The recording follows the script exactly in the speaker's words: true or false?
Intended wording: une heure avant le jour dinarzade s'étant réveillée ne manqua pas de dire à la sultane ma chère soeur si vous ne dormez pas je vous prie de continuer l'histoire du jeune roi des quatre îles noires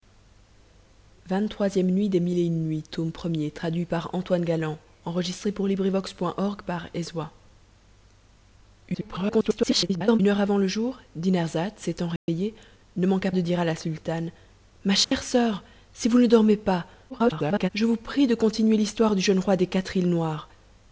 false